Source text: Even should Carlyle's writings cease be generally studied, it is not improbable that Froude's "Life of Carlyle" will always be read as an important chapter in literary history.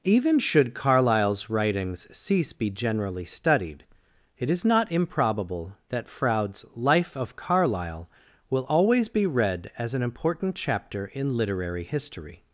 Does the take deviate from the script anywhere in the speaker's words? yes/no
no